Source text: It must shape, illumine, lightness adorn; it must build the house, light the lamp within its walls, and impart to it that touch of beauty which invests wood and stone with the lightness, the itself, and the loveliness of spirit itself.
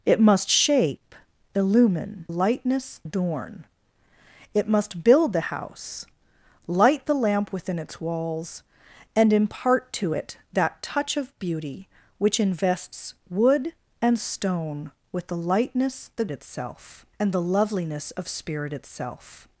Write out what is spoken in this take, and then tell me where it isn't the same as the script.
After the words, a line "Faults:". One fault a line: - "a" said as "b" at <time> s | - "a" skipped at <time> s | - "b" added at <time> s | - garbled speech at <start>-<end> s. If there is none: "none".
It must shape, illumine, lightness adorn; it must build the house, light the lamp within its walls, and impart to it that touch of beauty which invests wood and stone with the lightness, the itself, and the loveliness of spirit itself.
Faults:
none